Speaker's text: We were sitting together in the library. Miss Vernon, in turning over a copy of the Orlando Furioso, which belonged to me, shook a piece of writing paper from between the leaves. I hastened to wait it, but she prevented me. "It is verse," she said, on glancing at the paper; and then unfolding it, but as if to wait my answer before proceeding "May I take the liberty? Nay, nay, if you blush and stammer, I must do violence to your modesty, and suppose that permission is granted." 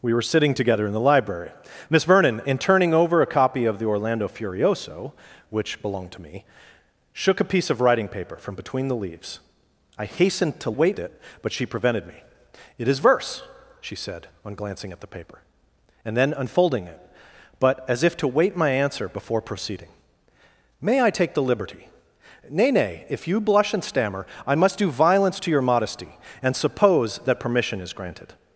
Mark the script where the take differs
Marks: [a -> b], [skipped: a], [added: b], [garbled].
We were sitting together in the library. Miss Vernon, in turning over a copy of the Orlando Furioso, which belonged to me, shook a piece of writing paper from between the leaves. I hastened to wait it, but she prevented me. "It is verse," she said, on glancing at the paper; and then unfolding it, but as if to wait my answer before proceeding "May I take the liberty? Nay, nay, if you blush and stammer, I must do violence to your modesty, and suppose that permission is granted."